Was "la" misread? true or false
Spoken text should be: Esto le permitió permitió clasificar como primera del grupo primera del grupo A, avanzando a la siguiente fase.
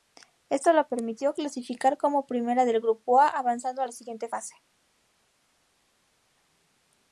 false